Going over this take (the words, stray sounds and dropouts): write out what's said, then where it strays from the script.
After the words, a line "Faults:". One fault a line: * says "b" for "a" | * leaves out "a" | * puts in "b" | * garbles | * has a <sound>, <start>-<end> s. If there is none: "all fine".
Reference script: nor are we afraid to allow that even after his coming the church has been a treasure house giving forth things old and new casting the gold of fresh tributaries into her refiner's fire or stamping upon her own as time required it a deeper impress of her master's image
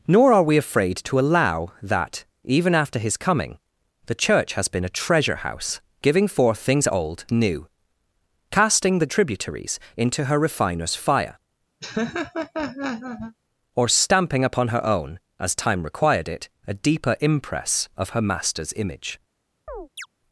nor are we afraid to allow that even after his coming the church has been a treasure house giving forth things old new casting the tributaries into her refiner's fire or stamping upon her own as time required it a deeper impress of her master's image
Faults:
* leaves out "and"
* leaves out "gold of fresh"
* has a laugh, 11.8-13.4 s
* has a chirp, 19.7-20.1 s